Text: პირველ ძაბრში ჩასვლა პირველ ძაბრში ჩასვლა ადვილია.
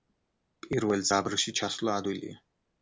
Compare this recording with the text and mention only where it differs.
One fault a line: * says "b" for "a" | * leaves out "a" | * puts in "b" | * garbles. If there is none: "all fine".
* leaves out "პირველ ძაბრში ჩასვლა"